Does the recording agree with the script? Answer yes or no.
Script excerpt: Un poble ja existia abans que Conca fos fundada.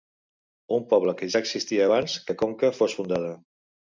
no